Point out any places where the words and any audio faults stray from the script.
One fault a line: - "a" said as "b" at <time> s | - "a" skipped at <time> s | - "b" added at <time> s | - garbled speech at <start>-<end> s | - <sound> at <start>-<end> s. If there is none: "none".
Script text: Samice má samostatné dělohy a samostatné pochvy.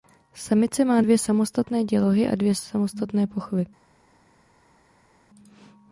- "dvě" added at 1.0 s
- "dvě" added at 2.4 s